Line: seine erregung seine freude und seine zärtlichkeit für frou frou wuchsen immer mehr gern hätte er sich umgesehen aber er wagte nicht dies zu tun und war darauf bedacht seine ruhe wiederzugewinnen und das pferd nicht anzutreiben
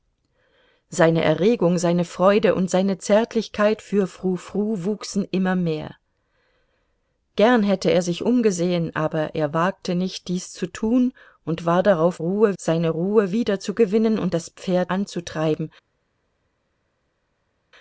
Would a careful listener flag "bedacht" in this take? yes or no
yes